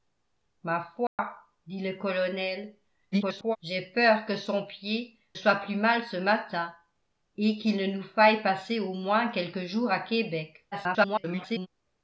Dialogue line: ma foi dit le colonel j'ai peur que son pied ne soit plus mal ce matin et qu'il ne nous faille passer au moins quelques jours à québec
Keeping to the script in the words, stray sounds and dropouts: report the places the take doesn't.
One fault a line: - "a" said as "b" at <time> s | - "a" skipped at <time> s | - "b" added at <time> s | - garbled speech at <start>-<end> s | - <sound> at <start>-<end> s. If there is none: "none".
- dropout at 1.1-1.2 s
- garbled speech at 3.1-3.6 s
- "ne" skipped at 5.2 s
- garbled speech at 10.7-11.7 s